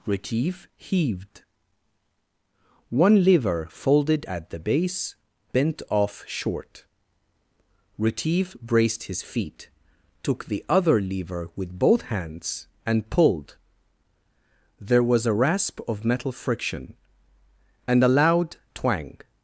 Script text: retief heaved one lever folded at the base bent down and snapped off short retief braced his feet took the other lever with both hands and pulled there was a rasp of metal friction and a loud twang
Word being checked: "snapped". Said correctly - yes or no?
no